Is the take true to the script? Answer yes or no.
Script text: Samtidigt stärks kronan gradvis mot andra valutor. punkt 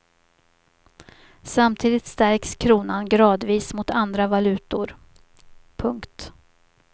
yes